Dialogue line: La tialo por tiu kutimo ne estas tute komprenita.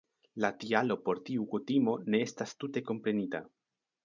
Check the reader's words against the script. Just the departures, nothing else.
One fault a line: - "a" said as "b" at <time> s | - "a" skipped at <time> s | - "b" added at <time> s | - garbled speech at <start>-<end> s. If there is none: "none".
none